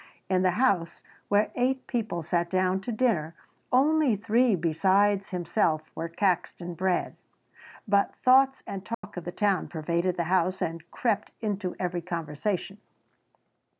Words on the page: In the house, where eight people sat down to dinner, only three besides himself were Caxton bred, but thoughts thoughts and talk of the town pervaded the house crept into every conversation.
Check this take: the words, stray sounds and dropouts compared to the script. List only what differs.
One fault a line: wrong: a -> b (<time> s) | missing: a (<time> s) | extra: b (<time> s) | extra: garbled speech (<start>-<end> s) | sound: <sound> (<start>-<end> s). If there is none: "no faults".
missing: thoughts (8.6 s)
sound: dropout (8.9-9.0 s)
extra: and (10.6 s)